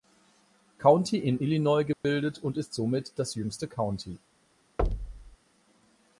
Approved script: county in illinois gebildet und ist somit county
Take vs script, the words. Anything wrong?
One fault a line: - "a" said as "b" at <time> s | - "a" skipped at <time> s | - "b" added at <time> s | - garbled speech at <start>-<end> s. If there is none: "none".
- "das jüngste" added at 3.2 s